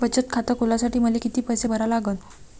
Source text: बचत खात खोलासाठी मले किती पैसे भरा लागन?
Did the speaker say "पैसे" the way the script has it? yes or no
yes